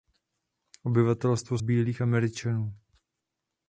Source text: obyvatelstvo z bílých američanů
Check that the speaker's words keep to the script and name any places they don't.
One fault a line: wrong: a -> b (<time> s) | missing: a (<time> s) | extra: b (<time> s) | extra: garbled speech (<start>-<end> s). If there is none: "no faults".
no faults